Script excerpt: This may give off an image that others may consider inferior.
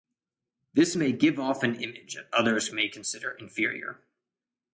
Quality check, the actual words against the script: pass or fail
pass